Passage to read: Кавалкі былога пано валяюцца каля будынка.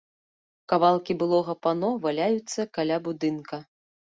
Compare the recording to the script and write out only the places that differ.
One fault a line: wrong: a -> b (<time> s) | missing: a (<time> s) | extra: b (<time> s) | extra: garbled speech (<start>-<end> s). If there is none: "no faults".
no faults